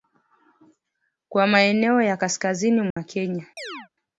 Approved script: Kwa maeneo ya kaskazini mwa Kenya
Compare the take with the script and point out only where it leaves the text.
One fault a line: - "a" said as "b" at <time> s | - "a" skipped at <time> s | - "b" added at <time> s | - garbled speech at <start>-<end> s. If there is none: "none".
none